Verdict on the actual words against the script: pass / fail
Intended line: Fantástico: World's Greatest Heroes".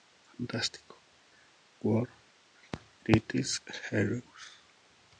pass